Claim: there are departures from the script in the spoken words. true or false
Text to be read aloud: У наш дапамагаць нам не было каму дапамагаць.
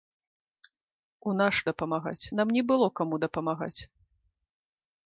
false